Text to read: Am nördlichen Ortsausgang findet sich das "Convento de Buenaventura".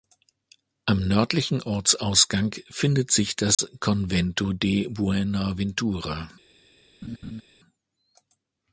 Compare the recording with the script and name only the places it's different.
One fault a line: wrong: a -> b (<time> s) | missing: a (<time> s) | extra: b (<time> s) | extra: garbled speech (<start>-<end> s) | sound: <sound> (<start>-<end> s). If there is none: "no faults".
sound: dropout (3.5-3.6 s)
sound: laugh (7.0-7.4 s)